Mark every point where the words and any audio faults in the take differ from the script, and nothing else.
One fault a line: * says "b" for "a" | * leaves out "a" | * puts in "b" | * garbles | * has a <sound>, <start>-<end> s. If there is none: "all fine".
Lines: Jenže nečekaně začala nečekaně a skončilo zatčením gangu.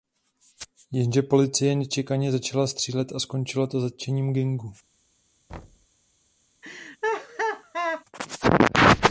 * puts in "policie"
* says "střílet" for "nečekaně"
* puts in "to"
* has a thud, 5.5-5.9 s
* has a laugh, 6.6-8.0 s